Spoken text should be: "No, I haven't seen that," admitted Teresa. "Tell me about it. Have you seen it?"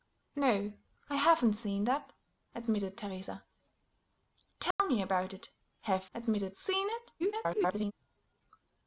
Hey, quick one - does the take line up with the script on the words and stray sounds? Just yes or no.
no